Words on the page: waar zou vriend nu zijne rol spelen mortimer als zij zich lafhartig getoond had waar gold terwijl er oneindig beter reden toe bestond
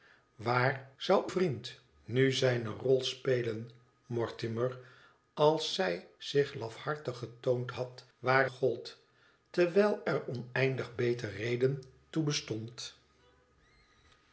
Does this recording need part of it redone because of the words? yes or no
no